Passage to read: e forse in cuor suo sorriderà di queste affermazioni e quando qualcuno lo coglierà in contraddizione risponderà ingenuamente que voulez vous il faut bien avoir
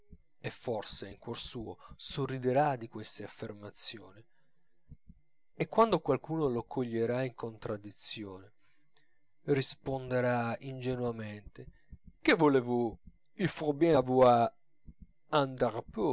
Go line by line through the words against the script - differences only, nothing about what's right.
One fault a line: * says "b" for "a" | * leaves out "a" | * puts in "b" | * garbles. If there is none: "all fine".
all fine